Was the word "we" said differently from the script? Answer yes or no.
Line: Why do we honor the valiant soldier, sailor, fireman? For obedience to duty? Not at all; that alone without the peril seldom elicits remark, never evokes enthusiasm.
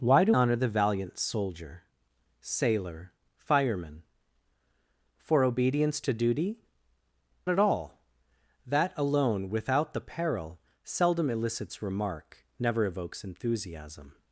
yes